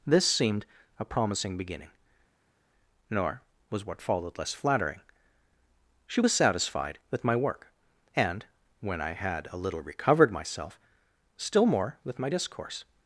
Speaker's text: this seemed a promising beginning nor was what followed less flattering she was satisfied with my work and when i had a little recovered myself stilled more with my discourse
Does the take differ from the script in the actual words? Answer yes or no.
yes